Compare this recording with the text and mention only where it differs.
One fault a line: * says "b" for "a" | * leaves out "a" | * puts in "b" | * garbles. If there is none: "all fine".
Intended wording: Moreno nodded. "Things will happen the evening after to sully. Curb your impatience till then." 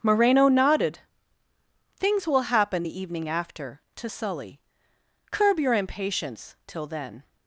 all fine